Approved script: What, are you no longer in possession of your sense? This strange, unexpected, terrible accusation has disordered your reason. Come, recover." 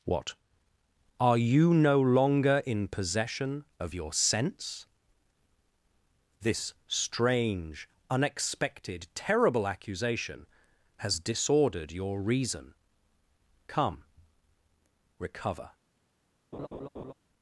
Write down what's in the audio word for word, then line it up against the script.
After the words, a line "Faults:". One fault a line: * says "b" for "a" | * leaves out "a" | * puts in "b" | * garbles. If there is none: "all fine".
What, are you no longer in possession of your sense? This strange, unexpected, terrible accusation has disordered your reason. Come, recover."
Faults:
all fine